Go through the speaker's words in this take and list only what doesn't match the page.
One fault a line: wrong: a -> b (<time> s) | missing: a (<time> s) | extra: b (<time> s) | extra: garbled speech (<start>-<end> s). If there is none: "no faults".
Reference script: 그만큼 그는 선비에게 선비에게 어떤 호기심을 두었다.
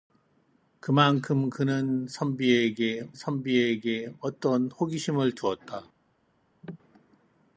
no faults